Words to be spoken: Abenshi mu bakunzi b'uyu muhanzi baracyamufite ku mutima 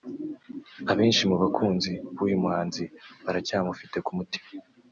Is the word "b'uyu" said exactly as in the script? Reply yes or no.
yes